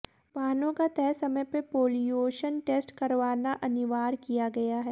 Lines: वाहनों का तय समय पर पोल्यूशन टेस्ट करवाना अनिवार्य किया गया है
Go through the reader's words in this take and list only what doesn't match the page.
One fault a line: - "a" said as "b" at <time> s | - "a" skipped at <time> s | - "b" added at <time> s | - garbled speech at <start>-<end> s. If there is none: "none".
none